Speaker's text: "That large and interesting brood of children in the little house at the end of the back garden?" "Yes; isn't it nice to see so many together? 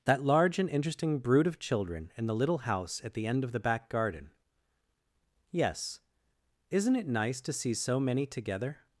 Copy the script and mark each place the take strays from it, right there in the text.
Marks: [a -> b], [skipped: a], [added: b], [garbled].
"That large and interesting brood of children in the little house at the end of the back garden?" "Yes; isn't it nice to see so many together?